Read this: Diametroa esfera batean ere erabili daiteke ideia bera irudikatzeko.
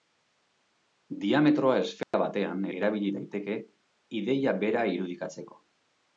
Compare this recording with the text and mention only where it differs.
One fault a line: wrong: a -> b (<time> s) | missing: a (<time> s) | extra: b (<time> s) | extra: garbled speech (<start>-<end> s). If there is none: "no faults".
missing: ere (2.6 s)